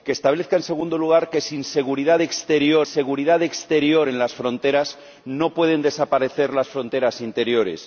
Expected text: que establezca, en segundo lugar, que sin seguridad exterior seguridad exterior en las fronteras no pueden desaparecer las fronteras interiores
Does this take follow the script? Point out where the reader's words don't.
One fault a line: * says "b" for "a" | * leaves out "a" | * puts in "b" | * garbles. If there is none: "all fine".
all fine